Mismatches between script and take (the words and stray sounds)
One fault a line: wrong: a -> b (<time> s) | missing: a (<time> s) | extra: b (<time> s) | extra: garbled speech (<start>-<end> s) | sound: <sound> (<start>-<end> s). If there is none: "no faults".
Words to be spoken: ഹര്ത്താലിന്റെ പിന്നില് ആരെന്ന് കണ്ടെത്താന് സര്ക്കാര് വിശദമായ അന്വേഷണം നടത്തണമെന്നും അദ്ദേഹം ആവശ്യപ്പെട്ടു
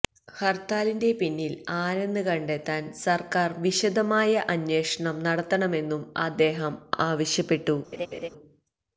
sound: laugh (7.9-8.3 s)